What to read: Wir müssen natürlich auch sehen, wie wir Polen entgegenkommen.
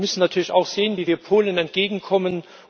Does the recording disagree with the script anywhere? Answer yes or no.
no